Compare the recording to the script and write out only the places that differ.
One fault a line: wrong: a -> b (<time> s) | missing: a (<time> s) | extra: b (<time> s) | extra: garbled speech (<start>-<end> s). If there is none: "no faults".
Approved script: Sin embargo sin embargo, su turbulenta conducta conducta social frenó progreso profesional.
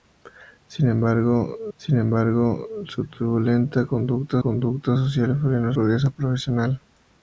no faults